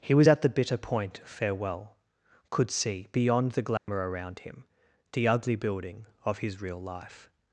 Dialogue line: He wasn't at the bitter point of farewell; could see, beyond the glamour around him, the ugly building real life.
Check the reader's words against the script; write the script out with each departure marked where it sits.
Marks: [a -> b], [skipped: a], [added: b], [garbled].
He [wasn't -> was] at the bitter point of farewell; could see, beyond the glamour around him, the ugly building [added: of his] real life.